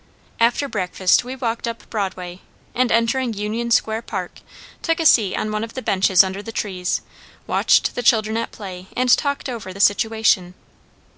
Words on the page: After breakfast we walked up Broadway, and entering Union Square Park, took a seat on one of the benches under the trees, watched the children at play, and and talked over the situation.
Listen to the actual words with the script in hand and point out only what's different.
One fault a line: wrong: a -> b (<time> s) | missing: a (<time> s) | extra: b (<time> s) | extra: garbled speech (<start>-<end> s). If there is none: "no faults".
missing: and (9.1 s)